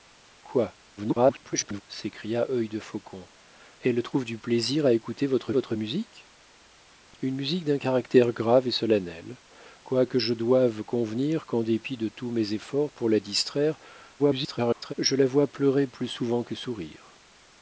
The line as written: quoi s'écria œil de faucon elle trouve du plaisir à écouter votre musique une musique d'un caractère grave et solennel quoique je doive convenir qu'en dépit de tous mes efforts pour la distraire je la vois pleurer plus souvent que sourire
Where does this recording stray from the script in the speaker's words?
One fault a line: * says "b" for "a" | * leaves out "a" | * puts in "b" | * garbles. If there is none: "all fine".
* garbles
* puts in "votre"
* garbles